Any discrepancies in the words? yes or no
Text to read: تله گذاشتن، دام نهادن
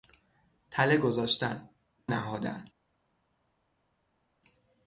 yes